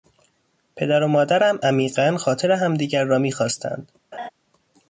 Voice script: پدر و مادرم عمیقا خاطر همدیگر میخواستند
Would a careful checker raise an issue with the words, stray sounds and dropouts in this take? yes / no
yes